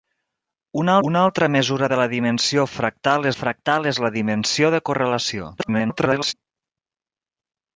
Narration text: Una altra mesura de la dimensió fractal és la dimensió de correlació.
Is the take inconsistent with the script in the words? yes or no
yes